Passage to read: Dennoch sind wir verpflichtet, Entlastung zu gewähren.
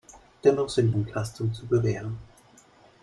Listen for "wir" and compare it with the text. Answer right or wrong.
wrong